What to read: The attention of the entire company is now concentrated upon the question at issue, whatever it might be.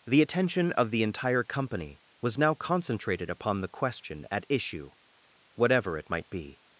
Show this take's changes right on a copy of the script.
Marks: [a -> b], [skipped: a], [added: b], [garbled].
The attention of the entire company [is -> was] now concentrated upon the question at issue, whatever it might be.